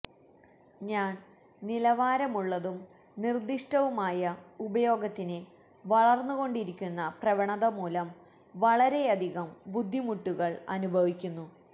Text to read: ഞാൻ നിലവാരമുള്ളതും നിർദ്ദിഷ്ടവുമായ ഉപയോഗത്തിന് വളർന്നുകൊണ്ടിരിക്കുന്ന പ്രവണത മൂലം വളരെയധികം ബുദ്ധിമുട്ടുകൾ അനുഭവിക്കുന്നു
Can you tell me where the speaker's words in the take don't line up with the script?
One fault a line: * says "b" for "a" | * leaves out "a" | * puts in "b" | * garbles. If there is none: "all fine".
all fine